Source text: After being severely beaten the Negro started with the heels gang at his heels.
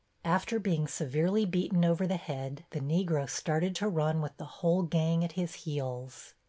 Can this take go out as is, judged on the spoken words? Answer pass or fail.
fail